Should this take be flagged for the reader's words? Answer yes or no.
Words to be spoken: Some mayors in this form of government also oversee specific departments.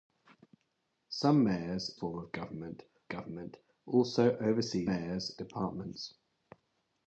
yes